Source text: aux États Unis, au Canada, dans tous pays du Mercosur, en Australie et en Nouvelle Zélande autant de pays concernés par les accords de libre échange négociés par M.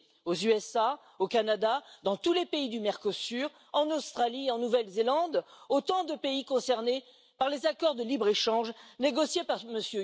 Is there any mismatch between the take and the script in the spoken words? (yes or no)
yes